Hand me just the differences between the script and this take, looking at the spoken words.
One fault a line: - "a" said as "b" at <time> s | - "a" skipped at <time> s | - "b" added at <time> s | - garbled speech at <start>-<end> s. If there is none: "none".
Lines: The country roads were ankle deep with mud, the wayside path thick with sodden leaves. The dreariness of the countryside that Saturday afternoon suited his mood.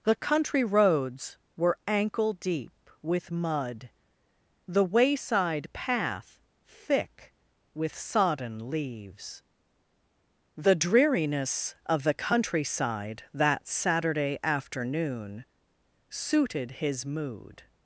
none